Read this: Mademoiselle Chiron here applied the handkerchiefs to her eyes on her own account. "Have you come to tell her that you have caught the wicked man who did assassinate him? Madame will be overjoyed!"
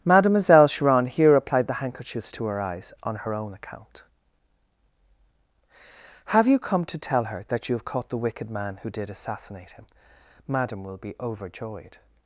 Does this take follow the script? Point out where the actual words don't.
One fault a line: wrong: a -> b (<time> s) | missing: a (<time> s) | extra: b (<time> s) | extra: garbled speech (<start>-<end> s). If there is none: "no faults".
no faults